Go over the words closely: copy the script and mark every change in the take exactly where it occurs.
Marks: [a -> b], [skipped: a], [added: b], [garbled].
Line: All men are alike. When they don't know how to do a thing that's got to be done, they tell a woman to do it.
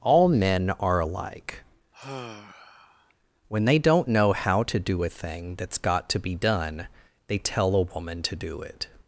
All men are alike. When they don't know how to do a thing that's got to be done, they tell a woman to do it.